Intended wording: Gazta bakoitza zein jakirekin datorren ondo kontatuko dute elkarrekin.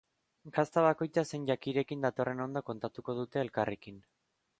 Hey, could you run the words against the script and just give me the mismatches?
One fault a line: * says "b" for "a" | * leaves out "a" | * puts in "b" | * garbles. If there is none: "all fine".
all fine